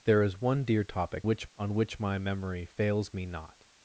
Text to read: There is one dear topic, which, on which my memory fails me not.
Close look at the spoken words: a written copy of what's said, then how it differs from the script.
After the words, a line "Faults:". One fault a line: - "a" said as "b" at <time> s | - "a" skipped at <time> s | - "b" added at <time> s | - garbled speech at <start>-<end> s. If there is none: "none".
There is one dear topic, which, on which my memory fails me not.
Faults:
none